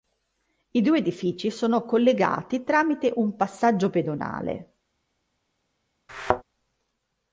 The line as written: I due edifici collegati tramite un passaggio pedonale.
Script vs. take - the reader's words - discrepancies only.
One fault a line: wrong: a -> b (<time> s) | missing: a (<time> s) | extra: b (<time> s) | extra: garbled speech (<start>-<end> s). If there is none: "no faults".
extra: sono (1.5 s)